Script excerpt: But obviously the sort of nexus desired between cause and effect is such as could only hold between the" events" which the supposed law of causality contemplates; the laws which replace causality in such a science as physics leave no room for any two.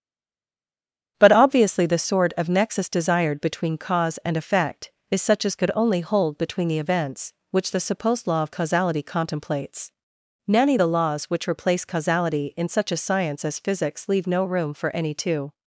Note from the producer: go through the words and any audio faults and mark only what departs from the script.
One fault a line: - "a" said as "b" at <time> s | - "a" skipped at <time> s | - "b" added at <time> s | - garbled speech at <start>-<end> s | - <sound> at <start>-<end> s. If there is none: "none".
- "nanny" added at 10.5 s